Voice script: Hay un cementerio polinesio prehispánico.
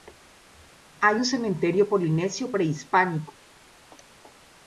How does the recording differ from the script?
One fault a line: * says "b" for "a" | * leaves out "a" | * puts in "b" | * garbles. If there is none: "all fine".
all fine